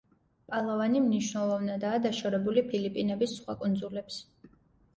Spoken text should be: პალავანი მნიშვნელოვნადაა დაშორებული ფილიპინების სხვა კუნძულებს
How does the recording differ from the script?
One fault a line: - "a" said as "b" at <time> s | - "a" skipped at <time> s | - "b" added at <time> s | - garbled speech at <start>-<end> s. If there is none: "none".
none